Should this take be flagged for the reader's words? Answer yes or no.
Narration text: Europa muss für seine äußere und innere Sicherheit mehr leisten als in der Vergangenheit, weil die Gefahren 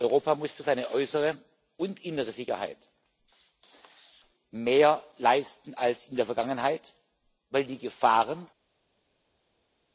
no